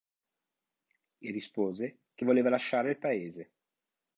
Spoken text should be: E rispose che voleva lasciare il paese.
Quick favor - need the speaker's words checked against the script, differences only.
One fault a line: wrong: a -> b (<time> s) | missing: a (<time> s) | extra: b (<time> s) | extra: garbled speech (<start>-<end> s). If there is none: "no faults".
no faults